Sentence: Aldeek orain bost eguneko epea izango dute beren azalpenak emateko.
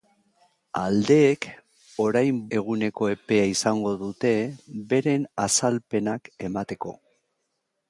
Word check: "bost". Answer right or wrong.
wrong